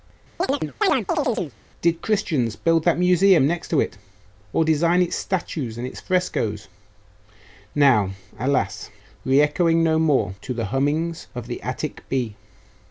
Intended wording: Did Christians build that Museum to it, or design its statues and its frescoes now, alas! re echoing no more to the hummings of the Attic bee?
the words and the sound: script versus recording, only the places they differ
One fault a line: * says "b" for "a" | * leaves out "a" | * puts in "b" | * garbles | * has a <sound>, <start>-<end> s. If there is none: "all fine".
* has a chirp, 0.4-1.6 s
* puts in "next"